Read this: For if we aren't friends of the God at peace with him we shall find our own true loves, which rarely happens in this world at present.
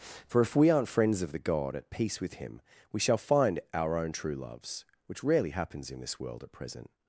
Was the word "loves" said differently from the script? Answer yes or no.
no